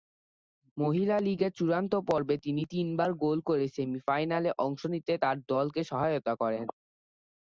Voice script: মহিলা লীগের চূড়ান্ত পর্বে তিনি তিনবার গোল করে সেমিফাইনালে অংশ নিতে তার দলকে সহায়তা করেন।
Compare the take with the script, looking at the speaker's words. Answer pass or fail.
pass